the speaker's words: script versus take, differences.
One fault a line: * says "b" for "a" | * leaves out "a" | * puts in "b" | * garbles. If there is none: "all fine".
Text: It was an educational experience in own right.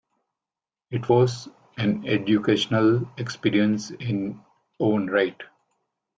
all fine